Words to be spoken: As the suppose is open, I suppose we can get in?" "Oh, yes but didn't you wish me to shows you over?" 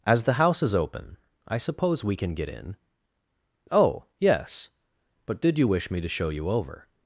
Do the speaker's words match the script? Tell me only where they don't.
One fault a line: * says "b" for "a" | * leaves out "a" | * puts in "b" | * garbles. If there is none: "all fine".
* says "house" for "suppose"
* says "did" for "didn't"
* says "show" for "shows"